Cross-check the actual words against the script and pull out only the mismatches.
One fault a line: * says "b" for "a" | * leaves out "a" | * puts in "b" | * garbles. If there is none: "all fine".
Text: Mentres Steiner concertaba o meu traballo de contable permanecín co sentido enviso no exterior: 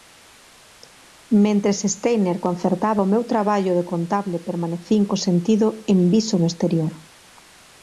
all fine